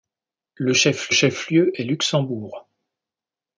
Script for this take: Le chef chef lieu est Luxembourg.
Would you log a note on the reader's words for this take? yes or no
no